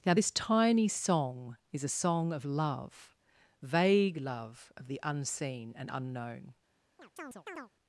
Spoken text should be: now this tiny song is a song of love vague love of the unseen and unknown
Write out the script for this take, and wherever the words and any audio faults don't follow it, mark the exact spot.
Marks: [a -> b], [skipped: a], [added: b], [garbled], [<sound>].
now this tiny song is a song of love vague love of the unseen and unknown [chirp]